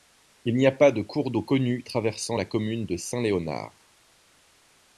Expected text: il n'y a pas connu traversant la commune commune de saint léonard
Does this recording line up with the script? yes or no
no